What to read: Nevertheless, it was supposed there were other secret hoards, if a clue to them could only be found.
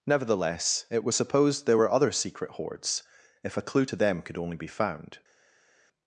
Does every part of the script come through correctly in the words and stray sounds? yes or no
yes